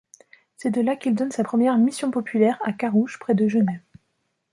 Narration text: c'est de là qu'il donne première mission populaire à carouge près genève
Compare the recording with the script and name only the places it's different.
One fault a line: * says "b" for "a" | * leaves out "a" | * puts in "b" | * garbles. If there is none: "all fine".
* puts in "sa"
* puts in "de"